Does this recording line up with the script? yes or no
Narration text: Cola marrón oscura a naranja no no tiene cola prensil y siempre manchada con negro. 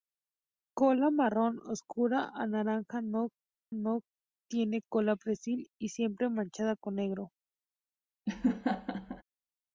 yes